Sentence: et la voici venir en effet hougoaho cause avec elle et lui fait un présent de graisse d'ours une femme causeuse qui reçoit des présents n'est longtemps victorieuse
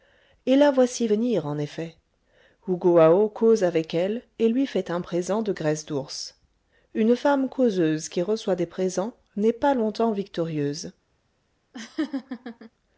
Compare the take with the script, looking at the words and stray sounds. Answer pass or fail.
fail